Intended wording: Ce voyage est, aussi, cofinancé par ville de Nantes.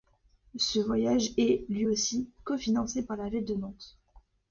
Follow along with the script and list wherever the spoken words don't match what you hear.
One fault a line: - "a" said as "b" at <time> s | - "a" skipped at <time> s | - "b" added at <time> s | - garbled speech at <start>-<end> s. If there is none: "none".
- "lui" added at 1.7 s
- "la" added at 3.2 s